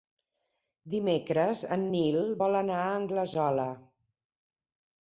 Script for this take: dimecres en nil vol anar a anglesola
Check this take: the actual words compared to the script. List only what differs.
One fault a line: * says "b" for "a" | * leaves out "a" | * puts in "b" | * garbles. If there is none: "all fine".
all fine